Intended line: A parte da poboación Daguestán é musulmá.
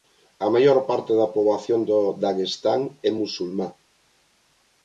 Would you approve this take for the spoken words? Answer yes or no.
no